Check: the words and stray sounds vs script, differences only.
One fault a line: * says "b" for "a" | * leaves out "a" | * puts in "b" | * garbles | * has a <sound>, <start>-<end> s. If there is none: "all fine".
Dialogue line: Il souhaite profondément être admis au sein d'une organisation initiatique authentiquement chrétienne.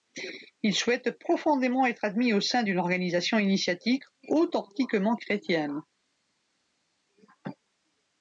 all fine